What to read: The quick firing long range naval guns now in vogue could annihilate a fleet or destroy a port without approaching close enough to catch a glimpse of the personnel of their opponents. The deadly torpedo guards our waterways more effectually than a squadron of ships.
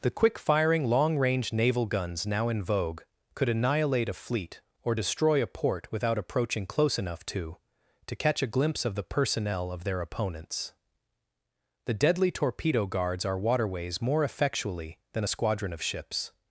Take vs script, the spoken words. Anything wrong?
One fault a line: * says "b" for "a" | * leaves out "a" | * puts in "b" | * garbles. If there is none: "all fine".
* puts in "to"